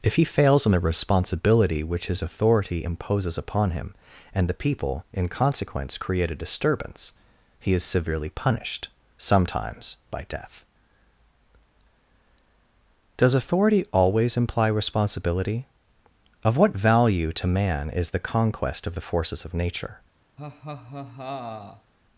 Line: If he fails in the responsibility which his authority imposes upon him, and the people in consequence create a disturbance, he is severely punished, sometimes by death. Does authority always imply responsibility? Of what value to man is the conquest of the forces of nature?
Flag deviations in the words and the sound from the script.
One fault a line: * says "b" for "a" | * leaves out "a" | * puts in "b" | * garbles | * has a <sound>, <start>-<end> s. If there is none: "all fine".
* has a laugh, 20.4-21.9 s